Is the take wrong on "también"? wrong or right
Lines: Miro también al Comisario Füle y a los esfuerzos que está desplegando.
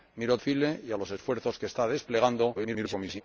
wrong